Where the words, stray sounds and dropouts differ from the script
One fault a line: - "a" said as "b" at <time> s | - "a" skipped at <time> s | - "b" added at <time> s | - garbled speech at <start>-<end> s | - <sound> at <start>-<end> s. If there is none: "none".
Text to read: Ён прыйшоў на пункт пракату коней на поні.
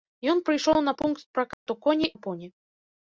- dropout at 1.5-1.7 s